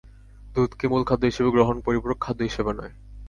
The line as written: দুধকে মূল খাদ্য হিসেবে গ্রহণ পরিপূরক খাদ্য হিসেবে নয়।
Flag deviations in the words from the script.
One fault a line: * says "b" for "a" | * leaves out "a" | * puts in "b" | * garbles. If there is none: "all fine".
all fine